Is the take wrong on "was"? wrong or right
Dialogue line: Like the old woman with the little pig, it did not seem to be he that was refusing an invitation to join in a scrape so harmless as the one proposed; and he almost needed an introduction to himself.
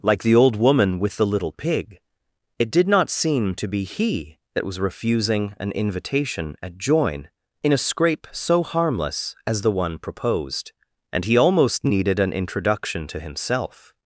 right